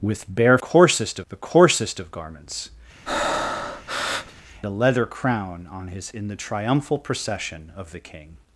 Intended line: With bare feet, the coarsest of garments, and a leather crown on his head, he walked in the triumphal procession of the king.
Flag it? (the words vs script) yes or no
yes